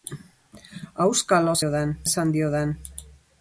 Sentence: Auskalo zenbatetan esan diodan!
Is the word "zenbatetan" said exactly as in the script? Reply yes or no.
no